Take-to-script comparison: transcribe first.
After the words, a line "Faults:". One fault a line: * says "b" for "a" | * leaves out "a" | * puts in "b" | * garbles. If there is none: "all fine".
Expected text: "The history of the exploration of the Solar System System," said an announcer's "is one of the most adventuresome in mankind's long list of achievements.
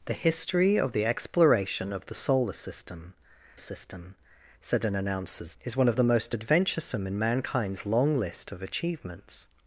"The history of the exploration of the Solar System System," said an announcer's "is one of the most adventuresome in mankind's long list of achievements.
Faults:
all fine